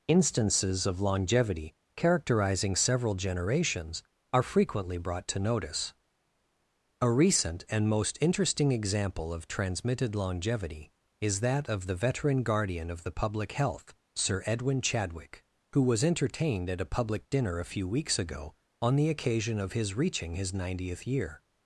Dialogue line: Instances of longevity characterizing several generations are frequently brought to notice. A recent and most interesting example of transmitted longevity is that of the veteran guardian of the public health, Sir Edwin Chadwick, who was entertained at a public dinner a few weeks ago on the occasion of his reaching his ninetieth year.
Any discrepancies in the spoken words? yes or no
no